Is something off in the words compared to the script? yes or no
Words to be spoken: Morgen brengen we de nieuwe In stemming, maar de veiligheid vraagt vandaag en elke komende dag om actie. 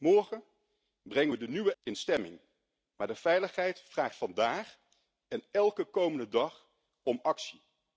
no